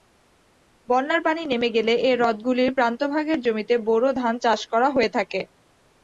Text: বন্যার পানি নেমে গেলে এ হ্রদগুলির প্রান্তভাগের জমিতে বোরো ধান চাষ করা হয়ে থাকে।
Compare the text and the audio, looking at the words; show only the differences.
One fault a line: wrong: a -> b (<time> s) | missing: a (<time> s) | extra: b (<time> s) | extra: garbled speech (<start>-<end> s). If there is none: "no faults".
no faults